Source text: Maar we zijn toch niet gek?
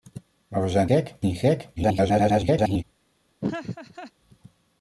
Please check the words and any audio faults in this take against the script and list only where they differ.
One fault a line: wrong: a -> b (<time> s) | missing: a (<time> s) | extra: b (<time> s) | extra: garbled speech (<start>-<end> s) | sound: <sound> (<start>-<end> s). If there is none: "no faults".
wrong: toch -> gek (0.8 s)
extra: garbled speech (1.8-2.8 s)
sound: laugh (3.4-4.1 s)